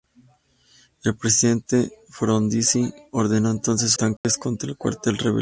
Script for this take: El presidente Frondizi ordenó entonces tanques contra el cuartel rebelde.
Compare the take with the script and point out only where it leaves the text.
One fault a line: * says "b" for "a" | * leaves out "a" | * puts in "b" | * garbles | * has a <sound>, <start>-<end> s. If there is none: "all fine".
* has a dropout, 4.2-4.2 s